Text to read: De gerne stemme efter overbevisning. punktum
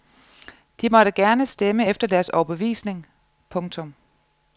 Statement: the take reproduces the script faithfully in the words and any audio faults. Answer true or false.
false